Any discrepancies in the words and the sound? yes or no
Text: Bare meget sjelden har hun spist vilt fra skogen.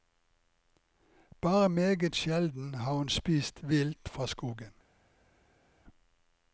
no